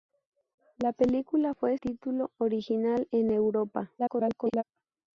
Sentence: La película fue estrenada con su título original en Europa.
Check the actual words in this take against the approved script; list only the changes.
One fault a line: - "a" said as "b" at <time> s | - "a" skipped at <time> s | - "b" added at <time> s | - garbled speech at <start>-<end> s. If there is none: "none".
- "estrenada con su" skipped at 1.8 s
- garbled speech at 4.0-4.6 s